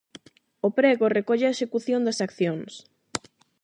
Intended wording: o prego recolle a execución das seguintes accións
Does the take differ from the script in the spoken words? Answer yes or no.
yes